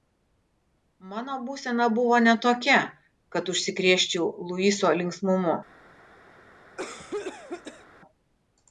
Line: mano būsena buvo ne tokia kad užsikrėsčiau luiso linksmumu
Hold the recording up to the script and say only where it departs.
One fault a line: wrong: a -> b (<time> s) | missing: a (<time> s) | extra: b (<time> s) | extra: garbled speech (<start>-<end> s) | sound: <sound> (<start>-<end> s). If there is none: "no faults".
sound: cough (6.8-7.9 s)